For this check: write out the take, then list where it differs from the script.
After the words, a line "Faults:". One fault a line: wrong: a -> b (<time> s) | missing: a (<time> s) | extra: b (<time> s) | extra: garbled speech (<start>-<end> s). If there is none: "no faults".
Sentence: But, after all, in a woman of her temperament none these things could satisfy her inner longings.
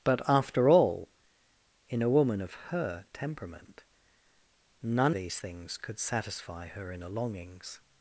But, after all, in a woman of her temperament none these things could satisfy her inner longings.
Faults:
no faults